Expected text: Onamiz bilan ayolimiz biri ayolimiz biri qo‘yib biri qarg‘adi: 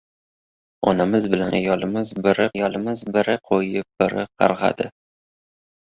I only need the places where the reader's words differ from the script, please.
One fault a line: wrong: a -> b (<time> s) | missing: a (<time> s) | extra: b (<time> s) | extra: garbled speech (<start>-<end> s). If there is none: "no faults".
no faults